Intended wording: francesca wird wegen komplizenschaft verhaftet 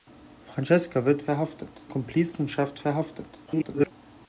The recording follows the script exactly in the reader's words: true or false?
false